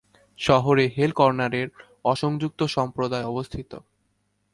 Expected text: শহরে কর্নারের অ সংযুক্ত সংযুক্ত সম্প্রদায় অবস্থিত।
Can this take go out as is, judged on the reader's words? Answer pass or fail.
fail